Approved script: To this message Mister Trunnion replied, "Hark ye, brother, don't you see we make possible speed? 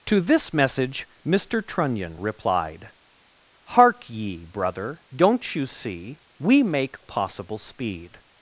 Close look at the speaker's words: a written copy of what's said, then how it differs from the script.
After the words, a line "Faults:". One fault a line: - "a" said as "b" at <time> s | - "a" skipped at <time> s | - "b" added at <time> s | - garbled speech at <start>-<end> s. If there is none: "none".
To this message Mister Trunnion replied, "Hark ye, brother, don't you see we make possible speed?
Faults:
none